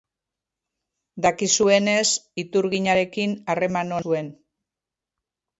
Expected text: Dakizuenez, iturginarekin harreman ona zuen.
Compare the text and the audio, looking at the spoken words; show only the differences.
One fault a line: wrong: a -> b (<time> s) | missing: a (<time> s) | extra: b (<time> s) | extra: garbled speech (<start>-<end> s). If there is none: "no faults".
missing: ona (4.0 s)